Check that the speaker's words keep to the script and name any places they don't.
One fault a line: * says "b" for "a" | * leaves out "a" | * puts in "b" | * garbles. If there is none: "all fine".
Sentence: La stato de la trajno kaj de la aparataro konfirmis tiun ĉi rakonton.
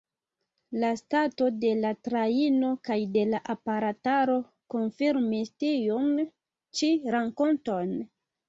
all fine